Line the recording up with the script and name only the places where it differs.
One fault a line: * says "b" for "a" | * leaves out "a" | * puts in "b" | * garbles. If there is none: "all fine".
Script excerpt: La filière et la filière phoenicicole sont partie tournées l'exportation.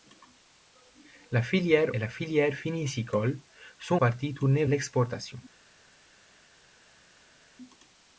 all fine